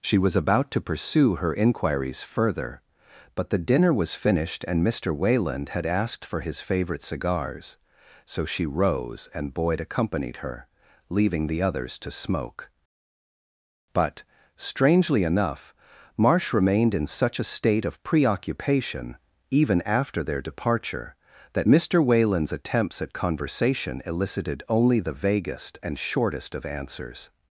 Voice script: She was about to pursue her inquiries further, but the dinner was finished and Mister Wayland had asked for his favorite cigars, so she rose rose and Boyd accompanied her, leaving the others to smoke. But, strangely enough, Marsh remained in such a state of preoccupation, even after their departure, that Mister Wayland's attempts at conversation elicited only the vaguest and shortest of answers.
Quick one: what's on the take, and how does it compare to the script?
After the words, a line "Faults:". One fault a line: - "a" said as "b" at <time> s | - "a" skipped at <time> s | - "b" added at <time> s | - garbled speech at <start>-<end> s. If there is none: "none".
She was about to pursue her inquiries further, but the dinner was finished and Mister Wayland had asked for his favorite cigars, so she rose and Boyd accompanied her, leaving the others to smoke. But, strangely enough, Marsh remained in such a state of preoccupation, even after their departure, that Mister Wayland's attempts at conversation elicited only the vaguest and shortest of answers.
Faults:
- "rose" skipped at 9.3 s